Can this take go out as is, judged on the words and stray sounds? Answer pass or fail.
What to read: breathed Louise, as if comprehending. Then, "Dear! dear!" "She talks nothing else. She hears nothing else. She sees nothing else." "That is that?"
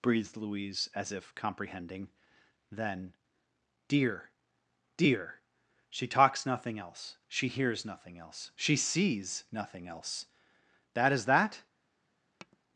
fail